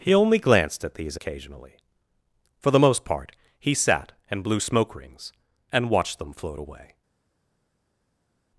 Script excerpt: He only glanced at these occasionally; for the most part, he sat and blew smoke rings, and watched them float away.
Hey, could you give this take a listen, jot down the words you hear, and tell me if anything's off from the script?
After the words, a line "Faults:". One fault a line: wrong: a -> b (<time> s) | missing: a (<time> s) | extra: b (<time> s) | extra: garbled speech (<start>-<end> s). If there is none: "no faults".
He only glanced at these occasionally; for the most part, he sat and blew smoke rings, and watched them float away.
Faults:
no faults